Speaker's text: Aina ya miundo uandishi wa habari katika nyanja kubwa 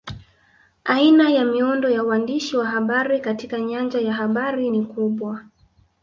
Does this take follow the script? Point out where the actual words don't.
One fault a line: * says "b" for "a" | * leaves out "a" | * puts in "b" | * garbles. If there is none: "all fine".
* puts in "ya"
* puts in "ya habari ni"